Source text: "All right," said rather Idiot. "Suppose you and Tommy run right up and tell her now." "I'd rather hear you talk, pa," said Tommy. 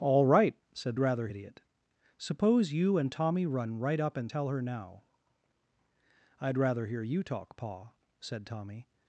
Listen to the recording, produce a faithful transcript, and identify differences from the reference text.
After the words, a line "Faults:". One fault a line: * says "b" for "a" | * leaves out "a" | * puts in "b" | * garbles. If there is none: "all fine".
"All right," said rather Idiot. "Suppose you and Tommy run right up and tell her now." "I'd rather hear you talk, pa," said Tommy.
Faults:
all fine